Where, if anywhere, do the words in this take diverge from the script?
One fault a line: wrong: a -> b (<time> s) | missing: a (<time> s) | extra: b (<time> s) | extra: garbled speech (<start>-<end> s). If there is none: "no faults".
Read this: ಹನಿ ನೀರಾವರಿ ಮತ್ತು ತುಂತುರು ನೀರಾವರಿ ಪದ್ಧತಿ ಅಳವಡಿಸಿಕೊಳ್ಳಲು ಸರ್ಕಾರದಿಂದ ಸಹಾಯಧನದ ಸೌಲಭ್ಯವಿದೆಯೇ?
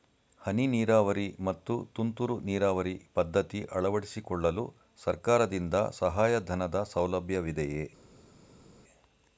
no faults